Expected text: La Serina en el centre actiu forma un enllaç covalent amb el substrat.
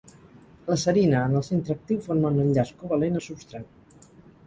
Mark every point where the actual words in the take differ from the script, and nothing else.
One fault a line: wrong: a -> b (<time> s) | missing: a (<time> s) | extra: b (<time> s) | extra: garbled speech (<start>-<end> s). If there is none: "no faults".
missing: amb (3.2 s)